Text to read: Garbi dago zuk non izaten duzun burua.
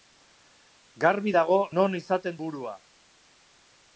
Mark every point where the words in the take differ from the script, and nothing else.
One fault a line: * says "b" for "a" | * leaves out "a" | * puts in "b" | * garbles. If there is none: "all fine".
* leaves out "zuk"
* leaves out "duzun"